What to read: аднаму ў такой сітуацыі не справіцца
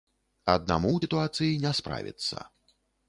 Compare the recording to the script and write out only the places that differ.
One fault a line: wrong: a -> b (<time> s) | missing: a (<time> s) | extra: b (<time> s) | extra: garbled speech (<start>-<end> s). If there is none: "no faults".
missing: такой (1.0 s)